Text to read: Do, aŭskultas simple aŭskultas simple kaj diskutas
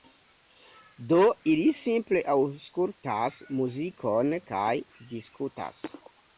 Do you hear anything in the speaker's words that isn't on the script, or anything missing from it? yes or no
yes